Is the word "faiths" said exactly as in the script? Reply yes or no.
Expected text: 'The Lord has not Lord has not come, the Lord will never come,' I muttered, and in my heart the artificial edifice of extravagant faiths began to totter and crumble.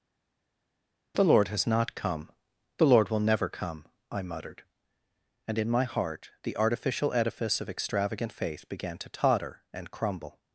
no